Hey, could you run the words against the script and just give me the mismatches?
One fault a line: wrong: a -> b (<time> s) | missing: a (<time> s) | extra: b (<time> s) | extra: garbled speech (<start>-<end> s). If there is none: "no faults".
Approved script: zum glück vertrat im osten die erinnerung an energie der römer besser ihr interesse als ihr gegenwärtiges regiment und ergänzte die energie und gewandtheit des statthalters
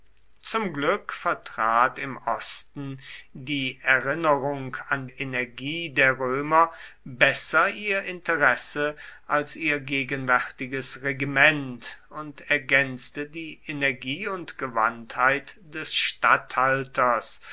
no faults